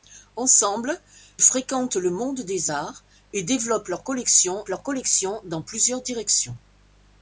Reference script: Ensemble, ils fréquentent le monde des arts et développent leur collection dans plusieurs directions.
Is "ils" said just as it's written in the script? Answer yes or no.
no